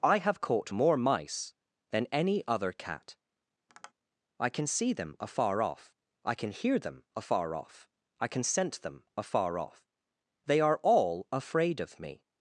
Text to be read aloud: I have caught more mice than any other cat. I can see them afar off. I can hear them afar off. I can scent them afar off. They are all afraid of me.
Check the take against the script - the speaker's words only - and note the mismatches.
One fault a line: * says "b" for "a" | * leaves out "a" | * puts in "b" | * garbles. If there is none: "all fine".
all fine